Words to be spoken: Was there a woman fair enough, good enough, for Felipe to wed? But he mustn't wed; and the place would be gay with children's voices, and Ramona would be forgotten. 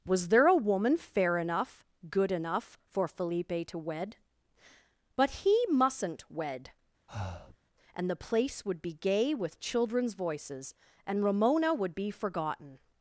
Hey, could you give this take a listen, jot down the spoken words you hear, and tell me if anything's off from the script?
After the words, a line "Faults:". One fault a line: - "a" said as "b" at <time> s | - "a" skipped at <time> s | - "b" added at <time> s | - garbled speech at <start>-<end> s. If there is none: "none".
Was there a woman fair enough, good enough, for Felipe to wed? But he mustn't wed; and the place would be gay with children's voices, and Ramona would be forgotten.
Faults:
none